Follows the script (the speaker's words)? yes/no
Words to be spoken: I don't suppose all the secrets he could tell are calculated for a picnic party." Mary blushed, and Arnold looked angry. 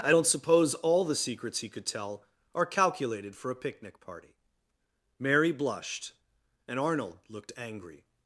yes